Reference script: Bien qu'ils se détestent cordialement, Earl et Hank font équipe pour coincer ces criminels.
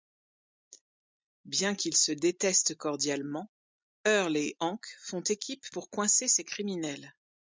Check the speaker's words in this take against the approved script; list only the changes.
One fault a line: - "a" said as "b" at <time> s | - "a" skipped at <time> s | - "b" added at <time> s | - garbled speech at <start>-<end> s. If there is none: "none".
none